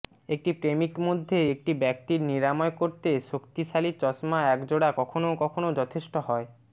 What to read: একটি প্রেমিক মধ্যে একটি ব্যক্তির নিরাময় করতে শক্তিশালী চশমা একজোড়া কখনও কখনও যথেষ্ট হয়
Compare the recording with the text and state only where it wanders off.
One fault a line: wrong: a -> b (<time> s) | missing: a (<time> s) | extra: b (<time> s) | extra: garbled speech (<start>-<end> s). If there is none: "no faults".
no faults